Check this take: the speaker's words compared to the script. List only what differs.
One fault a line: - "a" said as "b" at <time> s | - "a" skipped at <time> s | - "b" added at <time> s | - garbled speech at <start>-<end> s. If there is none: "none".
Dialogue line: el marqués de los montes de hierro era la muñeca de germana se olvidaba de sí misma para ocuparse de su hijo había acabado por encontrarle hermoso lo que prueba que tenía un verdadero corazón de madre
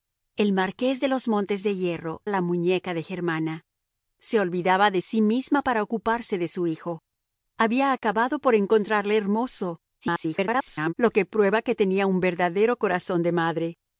- "era" skipped at 2.2 s
- garbled speech at 10.0-10.9 s